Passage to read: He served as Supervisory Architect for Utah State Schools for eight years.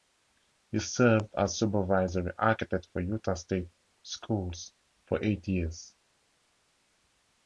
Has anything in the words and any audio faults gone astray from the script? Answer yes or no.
no